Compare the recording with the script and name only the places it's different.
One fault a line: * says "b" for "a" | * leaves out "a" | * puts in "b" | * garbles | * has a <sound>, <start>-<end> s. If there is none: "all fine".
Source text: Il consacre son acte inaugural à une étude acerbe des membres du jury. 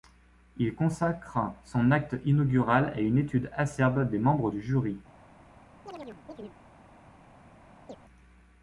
* has a chirp, 5.9-6.6 s
* has a chirp, 7.9-8.0 s